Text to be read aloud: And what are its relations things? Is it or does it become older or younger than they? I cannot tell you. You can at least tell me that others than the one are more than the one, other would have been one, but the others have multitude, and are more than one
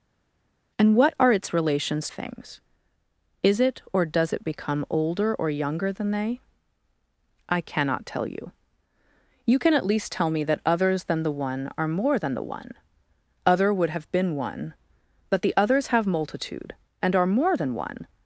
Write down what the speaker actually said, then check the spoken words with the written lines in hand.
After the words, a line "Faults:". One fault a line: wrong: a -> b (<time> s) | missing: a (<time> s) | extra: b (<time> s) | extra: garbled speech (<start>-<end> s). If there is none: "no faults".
And what are its relations things? Is it or does it become older or younger than they? I cannot tell you. You can at least tell me that others than the one are more than the one, other would have been one, but the others have multitude, and are more than one
Faults:
no faults